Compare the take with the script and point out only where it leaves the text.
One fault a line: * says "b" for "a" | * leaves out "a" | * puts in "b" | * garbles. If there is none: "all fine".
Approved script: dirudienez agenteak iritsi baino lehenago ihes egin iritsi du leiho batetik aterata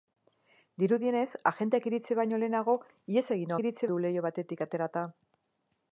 all fine